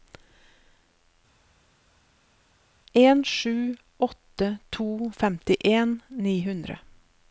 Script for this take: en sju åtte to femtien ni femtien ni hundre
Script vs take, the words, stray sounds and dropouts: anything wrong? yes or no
yes